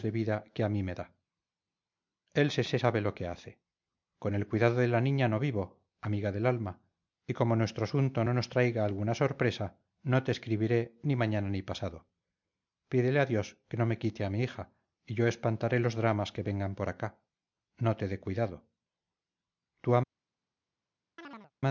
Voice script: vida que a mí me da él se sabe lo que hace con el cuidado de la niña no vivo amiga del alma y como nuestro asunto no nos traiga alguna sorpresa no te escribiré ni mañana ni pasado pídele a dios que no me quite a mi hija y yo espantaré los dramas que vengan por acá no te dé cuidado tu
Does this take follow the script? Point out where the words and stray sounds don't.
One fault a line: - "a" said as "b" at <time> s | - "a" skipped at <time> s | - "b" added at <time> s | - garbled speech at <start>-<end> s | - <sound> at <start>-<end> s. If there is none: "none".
- "se" added at 2.6 s
- chirp at 21.2-21.5 s